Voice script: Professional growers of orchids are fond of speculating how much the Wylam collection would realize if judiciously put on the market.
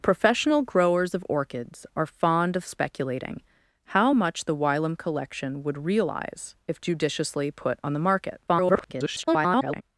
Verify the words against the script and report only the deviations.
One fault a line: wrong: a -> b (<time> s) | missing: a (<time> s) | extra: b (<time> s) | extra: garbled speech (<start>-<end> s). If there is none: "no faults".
extra: garbled speech (8.5-9.8 s)